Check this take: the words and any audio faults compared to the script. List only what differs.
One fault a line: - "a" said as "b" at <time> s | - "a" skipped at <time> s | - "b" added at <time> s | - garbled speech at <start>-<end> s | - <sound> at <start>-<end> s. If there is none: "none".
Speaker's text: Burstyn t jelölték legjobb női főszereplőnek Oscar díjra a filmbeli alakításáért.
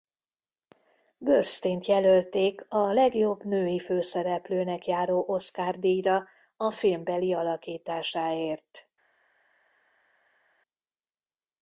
- "a" added at 2.7 s
- "járó" added at 4.9 s